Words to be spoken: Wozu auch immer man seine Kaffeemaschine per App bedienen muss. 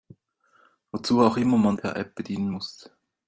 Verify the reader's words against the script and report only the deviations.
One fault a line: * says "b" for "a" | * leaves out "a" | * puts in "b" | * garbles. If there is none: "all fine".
* leaves out "seine Kaffeemaschine"